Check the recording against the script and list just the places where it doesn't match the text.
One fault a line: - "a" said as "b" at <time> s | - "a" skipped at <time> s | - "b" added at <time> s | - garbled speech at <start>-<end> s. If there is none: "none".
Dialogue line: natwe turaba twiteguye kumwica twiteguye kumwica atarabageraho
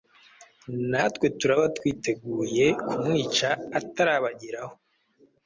- "twiteguye kumwica" skipped at 3.5 s